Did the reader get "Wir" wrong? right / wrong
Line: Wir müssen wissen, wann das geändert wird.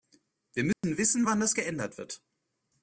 right